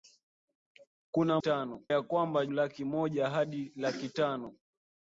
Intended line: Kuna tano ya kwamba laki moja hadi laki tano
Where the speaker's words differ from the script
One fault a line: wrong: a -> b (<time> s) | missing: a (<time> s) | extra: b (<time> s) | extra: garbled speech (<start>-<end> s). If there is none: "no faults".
no faults